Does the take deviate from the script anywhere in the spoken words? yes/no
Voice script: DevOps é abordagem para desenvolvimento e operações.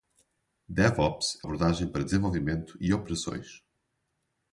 no